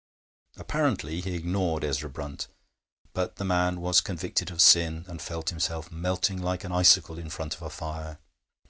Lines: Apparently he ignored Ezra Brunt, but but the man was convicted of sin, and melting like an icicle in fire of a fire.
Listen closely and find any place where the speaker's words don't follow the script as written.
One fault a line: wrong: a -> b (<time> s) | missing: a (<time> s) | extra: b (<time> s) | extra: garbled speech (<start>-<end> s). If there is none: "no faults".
missing: but (3.4 s)
extra: felt himself (5.2 s)
wrong: fire -> front (7.3 s)